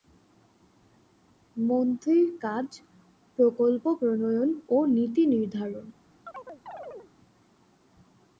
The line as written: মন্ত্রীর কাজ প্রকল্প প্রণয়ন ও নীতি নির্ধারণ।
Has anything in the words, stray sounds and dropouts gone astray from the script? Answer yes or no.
yes